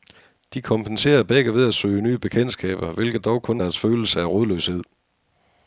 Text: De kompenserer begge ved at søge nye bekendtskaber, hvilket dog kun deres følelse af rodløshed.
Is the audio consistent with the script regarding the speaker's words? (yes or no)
yes